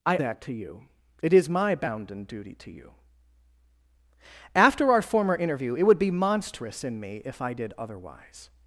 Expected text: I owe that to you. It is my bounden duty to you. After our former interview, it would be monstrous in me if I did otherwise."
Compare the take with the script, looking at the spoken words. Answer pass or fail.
fail